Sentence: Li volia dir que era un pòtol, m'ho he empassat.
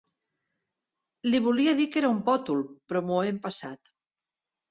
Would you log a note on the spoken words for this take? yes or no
yes